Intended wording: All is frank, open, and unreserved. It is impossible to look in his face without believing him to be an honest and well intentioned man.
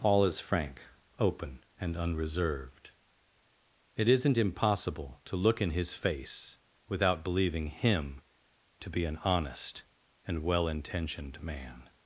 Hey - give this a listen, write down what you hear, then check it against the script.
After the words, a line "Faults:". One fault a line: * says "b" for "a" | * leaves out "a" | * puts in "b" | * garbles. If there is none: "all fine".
All is frank, open, and unreserved. It isn't impossible to look in his face without believing him to be an honest and well intentioned man.
Faults:
* says "isn't" for "is"